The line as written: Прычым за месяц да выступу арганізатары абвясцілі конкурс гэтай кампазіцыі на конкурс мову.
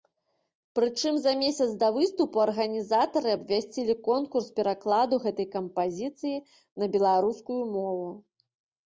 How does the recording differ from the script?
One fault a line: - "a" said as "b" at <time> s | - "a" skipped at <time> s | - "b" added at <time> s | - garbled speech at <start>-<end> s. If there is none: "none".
- "перакладу" added at 4.6 s
- "конкурс" said as "беларускую" at 7.0 s